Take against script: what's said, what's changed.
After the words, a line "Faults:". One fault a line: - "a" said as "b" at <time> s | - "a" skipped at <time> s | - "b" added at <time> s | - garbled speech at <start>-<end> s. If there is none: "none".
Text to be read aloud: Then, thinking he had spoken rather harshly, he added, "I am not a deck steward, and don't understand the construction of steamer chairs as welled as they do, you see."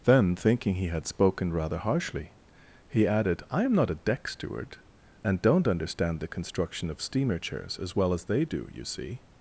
Then, thinking he had spoken rather harshly, he added, "I am not a deck steward, and don't understand the construction of steamer chairs as well as they do, you see."
Faults:
- "welled" said as "well" at 7.9 s